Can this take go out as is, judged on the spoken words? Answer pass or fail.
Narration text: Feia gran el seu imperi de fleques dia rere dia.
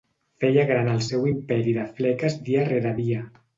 pass